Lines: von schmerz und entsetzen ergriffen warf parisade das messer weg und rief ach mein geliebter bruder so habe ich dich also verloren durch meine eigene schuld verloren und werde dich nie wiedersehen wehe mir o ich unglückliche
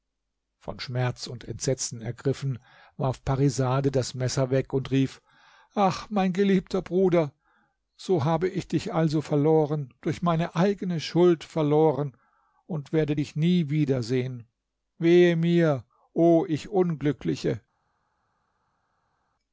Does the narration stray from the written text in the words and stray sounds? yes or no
no